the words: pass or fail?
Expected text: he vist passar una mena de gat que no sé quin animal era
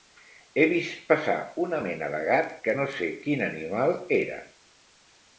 pass